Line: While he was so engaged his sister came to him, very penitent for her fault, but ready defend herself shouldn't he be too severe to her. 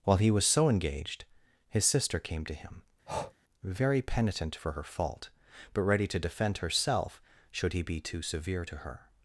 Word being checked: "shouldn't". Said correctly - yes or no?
no